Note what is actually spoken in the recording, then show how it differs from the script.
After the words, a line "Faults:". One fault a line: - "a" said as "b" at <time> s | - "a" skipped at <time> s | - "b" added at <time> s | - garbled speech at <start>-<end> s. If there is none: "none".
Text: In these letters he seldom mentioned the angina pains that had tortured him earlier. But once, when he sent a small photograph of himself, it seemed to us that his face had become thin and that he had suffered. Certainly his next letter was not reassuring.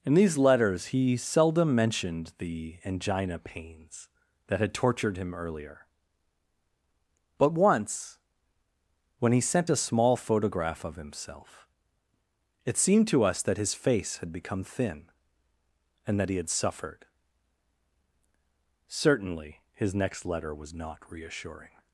In these letters he seldom mentioned the angina pains that had tortured him earlier. But once, when he sent a small photograph of himself, it seemed to us that his face had become thin and that he had suffered. Certainly his next letter was not reassuring.
Faults:
none